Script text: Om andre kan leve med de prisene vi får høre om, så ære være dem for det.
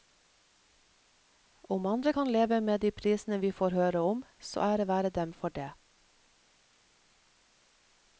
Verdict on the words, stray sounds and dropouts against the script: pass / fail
pass